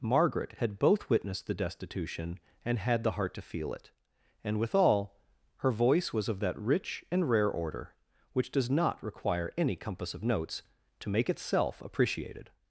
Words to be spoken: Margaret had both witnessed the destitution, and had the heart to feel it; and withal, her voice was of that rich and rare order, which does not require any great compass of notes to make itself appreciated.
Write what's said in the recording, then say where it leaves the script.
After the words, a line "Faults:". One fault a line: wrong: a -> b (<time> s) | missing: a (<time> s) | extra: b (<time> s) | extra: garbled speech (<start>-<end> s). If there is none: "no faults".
Margaret had both witnessed the destitution, and had the heart to feel it; and withal, her voice was of that rich and rare order, which does not require any compass of notes to make itself appreciated.
Faults:
missing: great (9.8 s)